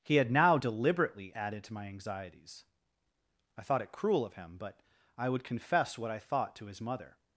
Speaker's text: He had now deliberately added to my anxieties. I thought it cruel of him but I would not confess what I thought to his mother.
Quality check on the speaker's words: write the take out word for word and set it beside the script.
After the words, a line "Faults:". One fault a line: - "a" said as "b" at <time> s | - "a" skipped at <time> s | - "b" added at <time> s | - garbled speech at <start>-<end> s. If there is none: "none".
He had now deliberately added to my anxieties. I thought it cruel of him but I would confess what I thought to his mother.
Faults:
- "not" skipped at 5.4 s